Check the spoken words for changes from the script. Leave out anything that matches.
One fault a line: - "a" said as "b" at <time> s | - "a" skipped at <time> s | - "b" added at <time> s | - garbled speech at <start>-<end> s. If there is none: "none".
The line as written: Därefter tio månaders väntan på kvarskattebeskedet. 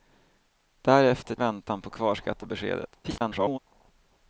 - "tio månaders" skipped at 1.4 s
- garbled speech at 3.0-3.6 s